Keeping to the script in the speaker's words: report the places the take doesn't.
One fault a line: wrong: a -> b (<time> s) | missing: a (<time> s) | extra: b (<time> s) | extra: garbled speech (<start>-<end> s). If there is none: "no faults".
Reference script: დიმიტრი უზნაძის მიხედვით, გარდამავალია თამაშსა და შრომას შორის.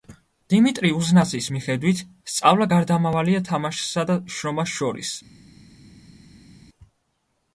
extra: სწავლა (2.3 s)